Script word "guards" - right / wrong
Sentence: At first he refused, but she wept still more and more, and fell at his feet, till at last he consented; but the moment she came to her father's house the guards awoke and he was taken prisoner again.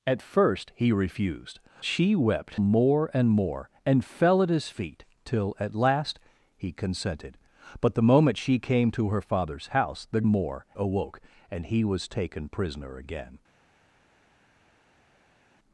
wrong